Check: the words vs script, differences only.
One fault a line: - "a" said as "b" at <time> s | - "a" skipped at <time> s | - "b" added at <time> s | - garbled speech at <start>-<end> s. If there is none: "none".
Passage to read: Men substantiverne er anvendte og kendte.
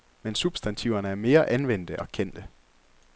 - "mere" added at 1.1 s